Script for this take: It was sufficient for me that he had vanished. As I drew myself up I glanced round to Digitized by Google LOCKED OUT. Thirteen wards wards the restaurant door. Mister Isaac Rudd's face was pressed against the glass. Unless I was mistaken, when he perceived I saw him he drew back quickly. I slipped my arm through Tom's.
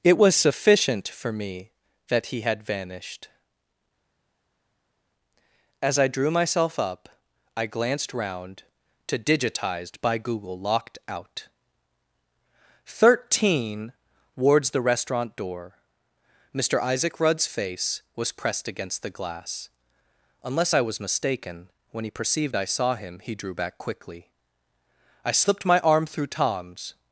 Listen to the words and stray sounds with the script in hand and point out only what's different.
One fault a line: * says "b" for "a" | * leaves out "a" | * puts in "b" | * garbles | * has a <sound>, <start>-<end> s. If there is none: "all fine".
* leaves out "wards"